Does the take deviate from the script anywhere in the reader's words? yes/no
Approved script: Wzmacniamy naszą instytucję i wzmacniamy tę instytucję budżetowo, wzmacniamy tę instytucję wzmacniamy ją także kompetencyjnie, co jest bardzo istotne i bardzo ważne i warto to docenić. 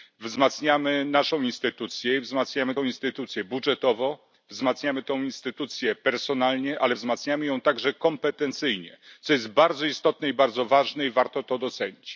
yes